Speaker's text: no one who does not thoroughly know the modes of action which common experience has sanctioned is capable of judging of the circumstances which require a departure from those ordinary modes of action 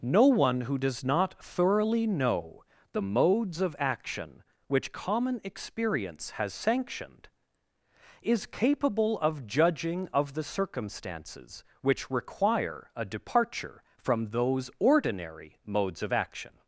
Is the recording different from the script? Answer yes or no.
no